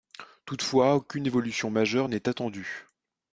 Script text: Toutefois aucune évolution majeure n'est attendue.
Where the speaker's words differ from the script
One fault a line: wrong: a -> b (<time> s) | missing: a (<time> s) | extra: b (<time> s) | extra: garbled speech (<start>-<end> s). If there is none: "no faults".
no faults